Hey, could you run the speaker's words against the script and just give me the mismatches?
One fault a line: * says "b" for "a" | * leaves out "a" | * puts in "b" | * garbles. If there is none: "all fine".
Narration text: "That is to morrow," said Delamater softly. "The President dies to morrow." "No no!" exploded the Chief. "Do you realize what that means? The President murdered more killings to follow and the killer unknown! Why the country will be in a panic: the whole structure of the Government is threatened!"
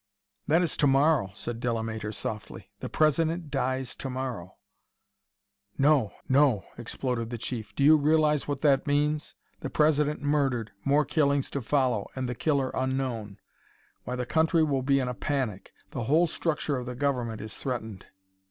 all fine